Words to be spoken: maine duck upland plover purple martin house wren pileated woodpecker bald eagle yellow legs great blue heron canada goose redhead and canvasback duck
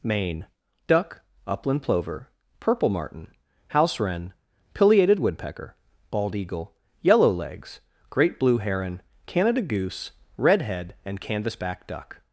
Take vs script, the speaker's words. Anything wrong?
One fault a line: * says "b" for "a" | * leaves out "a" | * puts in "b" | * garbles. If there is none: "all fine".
all fine